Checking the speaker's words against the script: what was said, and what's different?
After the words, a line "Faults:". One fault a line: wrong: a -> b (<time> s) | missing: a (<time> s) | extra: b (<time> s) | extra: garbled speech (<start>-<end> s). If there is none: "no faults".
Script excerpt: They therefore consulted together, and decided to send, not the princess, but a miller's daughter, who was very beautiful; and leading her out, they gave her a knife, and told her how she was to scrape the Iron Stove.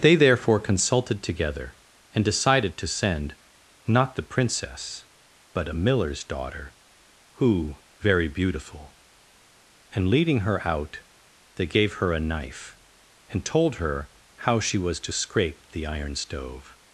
They therefore consulted together, and decided to send, not the princess, but a miller's daughter, who very beautiful; and leading her out, they gave her a knife, and told her how she was to scrape the Iron Stove.
Faults:
missing: was (7.8 s)